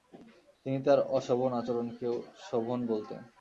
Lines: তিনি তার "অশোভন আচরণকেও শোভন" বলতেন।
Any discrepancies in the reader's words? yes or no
no